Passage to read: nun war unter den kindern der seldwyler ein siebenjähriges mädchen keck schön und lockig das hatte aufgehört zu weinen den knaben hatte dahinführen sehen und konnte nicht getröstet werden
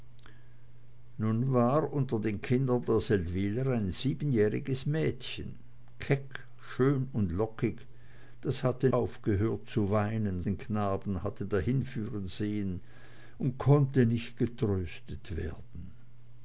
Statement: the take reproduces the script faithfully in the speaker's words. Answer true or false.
true